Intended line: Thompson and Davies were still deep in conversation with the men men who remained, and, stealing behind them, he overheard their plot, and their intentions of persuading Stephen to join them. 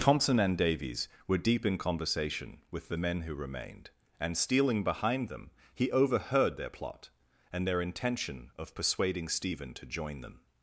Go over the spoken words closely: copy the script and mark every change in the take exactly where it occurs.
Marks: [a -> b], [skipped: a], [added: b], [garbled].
Thompson and Davies were [skipped: still] deep in conversation with the men [skipped: men] who remained, and, stealing behind them, he overheard their plot, and their [intentions -> intention] of persuading Stephen to join them.